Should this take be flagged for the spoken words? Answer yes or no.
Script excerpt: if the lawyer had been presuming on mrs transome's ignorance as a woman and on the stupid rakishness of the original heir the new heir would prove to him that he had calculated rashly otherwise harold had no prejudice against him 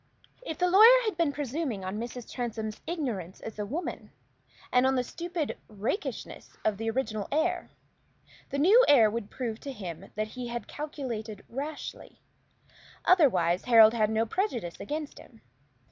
no